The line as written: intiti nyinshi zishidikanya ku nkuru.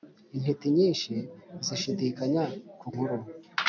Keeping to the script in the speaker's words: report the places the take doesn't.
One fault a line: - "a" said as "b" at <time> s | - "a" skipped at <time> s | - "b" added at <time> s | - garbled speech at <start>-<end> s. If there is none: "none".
none